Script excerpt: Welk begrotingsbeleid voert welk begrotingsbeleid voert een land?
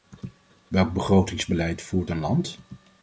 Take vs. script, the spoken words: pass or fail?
fail